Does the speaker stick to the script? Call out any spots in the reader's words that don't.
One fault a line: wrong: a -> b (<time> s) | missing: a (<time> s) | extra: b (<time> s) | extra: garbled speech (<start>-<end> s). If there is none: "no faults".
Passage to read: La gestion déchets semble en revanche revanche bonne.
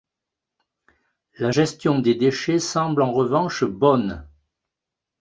extra: des (2.0 s)
missing: revanche (3.6 s)